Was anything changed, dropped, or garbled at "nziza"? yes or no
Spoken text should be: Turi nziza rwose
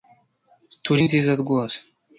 no